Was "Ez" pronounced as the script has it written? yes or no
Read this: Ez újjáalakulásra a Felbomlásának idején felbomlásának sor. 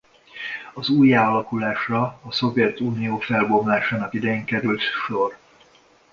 no